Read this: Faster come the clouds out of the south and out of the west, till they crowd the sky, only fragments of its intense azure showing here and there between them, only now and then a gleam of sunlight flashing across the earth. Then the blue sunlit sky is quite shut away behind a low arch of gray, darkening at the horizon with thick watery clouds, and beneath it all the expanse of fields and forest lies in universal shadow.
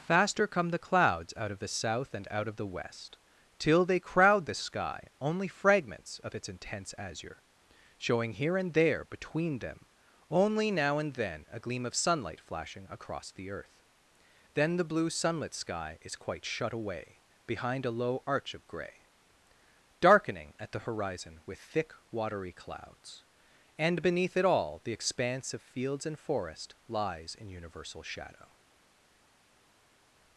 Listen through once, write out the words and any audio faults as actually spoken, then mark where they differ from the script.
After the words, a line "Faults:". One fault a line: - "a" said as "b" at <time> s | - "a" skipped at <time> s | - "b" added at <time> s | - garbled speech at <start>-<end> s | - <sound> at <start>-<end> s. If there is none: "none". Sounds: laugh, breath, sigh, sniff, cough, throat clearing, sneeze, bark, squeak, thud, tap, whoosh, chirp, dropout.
Faster come the clouds out of the south and out of the west, till they crowd the sky, only fragments of its intense azure showing here and there between them, only now and then a gleam of sunlight flashing across the earth. Then the blue sunlit sky is quite shut away behind a low arch of gray, darkening at the horizon with thick watery clouds, and beneath it all the expanse of fields and forest lies in universal shadow.
Faults:
none